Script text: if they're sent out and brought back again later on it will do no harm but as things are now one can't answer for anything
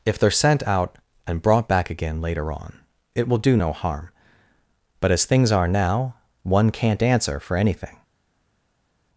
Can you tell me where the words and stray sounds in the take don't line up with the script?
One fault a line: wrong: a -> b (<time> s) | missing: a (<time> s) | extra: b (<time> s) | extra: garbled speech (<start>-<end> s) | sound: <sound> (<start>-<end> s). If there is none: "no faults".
no faults